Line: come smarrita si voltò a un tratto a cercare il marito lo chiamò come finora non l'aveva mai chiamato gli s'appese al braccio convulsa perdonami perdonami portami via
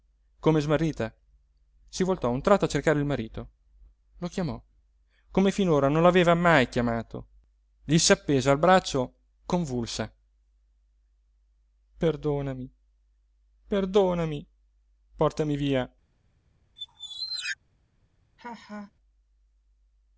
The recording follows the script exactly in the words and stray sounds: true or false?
false